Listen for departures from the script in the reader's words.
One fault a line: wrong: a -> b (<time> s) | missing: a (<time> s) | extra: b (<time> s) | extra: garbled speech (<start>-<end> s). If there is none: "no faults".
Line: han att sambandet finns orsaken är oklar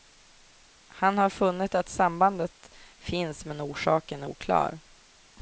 extra: har funnit (1.2 s)
extra: men (3.4 s)